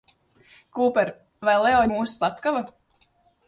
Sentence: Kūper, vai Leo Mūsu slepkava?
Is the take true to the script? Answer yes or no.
yes